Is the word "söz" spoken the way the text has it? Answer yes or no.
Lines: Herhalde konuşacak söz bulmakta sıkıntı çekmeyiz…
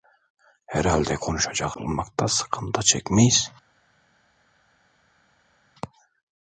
no